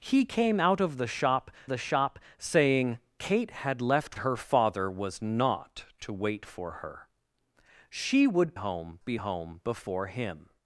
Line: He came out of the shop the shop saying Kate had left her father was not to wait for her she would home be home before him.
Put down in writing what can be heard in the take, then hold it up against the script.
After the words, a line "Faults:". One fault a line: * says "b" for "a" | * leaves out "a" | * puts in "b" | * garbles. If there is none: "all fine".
He came out of the shop the shop saying Kate had left her father was not to wait for her she would home be home before him.
Faults:
all fine